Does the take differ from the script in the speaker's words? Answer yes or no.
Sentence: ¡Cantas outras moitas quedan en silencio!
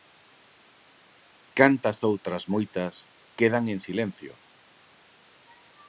no